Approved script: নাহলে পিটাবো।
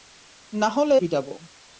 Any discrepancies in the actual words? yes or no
no